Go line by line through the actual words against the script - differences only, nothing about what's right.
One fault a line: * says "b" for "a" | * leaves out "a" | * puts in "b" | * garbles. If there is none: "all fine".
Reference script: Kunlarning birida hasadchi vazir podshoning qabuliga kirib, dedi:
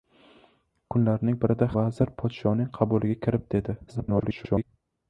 * leaves out "hasadchi"
* garbles